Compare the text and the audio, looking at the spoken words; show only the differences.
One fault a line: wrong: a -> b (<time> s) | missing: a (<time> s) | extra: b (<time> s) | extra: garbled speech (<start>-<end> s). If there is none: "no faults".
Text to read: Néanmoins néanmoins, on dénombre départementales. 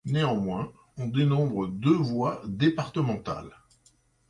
missing: néanmoins (0.7 s)
extra: deux voies (1.6 s)